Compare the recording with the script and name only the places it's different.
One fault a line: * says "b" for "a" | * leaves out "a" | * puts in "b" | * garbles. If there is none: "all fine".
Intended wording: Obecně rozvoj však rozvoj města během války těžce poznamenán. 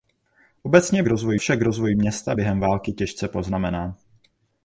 all fine